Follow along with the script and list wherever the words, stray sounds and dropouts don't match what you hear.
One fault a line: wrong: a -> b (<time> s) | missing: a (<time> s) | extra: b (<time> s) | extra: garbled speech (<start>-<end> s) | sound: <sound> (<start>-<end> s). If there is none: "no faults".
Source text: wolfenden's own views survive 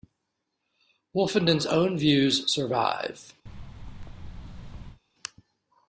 sound: thud (3.5-5.0 s)